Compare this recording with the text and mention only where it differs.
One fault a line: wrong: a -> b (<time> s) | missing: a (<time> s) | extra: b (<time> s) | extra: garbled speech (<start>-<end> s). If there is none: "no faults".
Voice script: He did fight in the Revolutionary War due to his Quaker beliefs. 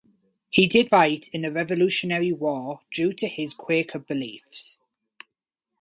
no faults